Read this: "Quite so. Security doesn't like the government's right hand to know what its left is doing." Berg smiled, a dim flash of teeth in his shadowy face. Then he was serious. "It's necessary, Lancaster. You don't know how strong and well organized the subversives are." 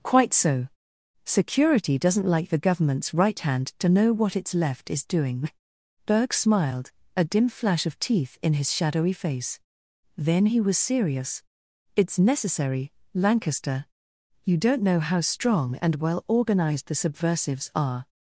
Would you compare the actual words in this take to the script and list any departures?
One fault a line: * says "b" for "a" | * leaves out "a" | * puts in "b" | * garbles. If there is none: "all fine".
all fine